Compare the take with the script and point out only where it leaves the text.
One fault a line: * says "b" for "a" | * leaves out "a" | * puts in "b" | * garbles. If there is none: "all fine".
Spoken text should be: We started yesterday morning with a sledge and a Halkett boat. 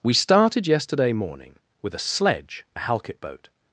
* leaves out "and"